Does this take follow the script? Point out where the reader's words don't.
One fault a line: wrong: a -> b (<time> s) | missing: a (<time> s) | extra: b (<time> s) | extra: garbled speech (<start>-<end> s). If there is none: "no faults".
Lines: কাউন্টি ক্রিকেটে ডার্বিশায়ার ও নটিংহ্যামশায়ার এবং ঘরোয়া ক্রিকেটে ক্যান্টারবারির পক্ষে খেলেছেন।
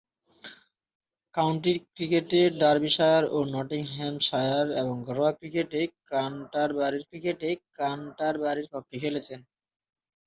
extra: ক্রিকেটে ক্যান্টারবারির (7.1 s)